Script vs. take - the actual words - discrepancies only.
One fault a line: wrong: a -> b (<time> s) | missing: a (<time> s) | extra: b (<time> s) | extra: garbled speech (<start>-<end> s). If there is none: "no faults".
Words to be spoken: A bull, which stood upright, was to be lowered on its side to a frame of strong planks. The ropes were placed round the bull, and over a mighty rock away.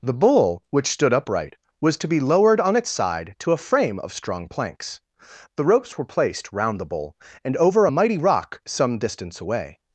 wrong: A -> The (0.0 s)
extra: some distance (8.7 s)